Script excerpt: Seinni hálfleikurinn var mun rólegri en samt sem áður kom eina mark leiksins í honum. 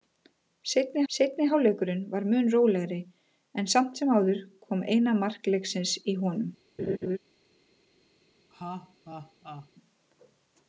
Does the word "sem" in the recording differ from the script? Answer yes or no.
no